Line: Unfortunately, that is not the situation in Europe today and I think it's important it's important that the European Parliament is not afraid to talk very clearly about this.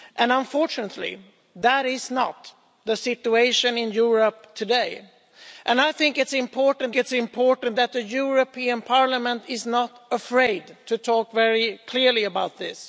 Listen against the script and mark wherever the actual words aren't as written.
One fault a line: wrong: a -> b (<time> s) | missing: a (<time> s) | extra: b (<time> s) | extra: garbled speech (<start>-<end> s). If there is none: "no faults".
no faults